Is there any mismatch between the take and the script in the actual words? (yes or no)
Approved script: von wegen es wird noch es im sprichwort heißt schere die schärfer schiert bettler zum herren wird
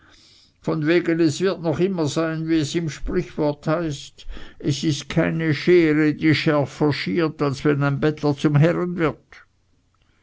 yes